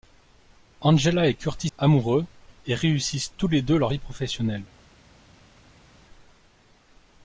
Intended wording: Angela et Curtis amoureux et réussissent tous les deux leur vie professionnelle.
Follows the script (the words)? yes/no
yes